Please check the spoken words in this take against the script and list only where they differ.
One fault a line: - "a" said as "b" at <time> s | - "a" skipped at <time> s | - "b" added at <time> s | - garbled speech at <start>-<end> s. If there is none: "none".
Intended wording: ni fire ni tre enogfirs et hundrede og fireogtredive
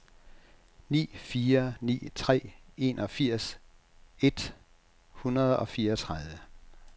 none